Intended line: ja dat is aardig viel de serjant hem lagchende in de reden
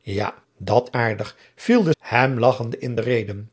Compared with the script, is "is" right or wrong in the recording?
wrong